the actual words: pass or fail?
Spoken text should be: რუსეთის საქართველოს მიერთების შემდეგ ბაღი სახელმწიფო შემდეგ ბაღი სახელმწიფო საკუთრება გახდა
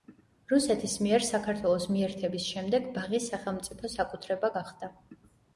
fail